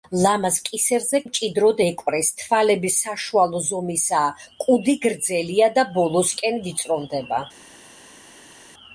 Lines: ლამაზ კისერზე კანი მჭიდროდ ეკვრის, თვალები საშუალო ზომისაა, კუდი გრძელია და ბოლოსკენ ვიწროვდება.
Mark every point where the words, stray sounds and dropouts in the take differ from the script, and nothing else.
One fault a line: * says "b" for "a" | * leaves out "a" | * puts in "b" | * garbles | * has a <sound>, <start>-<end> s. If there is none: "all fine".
* leaves out "კანი"